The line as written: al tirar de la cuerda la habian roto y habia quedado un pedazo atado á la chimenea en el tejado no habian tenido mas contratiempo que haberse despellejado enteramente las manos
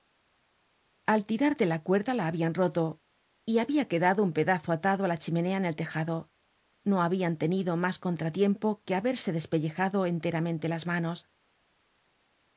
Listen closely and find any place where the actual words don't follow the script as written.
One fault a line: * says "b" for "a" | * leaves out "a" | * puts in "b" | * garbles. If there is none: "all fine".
all fine